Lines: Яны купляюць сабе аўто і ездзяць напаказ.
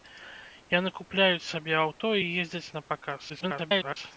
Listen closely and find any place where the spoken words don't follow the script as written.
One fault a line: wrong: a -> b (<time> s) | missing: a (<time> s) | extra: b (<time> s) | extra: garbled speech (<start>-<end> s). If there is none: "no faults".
extra: garbled speech (3.3-4.0 s)